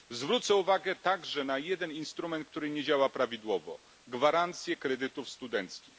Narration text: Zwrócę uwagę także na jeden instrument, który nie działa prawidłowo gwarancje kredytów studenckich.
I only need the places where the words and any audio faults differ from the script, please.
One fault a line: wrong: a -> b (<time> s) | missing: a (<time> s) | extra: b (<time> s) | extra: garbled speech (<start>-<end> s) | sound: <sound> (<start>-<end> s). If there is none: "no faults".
no faults